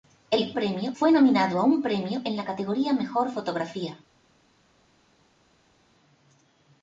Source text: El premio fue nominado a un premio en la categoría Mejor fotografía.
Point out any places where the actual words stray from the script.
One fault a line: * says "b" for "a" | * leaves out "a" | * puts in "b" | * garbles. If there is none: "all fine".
all fine